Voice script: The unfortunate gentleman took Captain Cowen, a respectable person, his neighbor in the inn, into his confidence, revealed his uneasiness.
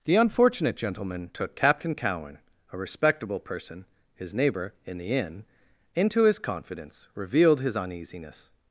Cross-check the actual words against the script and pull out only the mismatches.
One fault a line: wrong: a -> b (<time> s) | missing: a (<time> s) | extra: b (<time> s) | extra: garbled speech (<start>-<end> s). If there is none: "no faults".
no faults